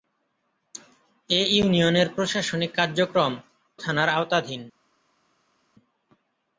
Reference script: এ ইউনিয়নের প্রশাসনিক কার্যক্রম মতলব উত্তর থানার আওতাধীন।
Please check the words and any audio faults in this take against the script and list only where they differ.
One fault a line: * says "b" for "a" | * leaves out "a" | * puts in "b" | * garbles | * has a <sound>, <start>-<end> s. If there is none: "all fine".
* leaves out "মতলব উত্তর"